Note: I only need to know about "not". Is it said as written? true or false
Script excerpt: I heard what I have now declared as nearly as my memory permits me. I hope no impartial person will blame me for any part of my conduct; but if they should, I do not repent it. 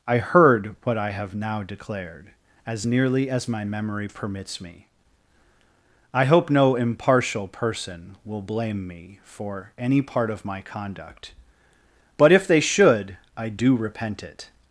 false